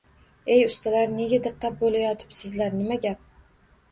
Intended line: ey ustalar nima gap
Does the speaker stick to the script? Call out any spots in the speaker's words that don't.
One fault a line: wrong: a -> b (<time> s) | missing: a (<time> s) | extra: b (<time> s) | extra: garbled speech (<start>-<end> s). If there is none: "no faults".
extra: nega diqqat bo‘layotibsizlar (1.2 s)